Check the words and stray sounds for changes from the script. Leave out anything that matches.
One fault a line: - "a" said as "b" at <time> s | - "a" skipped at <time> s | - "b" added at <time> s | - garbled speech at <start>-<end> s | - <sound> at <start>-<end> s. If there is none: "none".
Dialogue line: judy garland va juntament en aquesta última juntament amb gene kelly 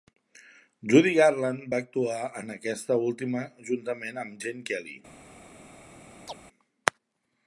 - "juntament" said as "actuar" at 1.8 s
- chirp at 6.3-6.4 s